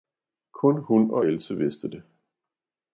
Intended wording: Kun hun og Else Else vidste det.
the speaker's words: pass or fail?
fail